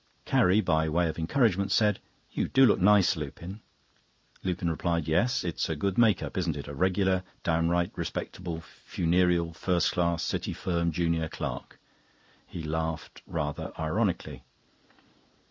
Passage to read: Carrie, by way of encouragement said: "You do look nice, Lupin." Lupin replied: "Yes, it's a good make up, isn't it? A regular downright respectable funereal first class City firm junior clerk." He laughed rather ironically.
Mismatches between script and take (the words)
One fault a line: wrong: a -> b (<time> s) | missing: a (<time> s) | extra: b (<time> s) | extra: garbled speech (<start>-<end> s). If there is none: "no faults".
no faults